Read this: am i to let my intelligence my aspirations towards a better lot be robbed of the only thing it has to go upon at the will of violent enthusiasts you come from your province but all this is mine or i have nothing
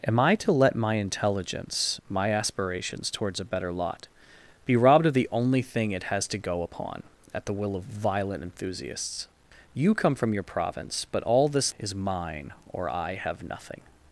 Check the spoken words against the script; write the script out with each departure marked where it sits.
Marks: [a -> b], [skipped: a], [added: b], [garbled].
am i to let my intelligence my aspirations towards a better lot be robbed of the only thing it has to go upon at the will of violent enthusiasts you come from your province but all this is mine or i have nothing